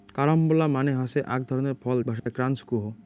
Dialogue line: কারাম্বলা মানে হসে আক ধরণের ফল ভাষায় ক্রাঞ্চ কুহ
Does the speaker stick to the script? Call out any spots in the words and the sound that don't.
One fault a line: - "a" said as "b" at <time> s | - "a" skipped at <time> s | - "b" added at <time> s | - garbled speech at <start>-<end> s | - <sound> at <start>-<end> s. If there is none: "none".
- dropout at 2.2-2.3 s